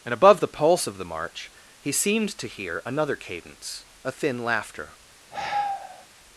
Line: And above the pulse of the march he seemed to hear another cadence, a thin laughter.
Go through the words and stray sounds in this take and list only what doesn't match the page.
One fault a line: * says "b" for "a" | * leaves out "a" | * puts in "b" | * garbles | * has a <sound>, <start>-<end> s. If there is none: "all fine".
* has a sigh, 5.3-6.1 s